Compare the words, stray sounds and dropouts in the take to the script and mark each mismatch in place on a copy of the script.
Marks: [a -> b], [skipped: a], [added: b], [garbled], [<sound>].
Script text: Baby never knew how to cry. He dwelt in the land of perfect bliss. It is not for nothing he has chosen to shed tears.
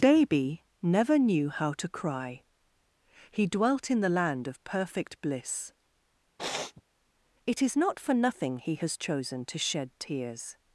Baby never knew how to cry. He dwelt in the land of perfect bliss. [sniff] It is not for nothing he has chosen to shed tears.